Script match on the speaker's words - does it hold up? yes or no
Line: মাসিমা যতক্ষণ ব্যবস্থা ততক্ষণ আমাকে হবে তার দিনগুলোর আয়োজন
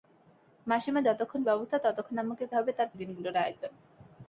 yes